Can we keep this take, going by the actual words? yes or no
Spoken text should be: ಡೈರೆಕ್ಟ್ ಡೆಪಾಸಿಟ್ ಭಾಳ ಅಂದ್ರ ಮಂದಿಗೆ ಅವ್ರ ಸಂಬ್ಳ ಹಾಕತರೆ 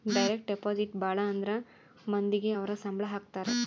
yes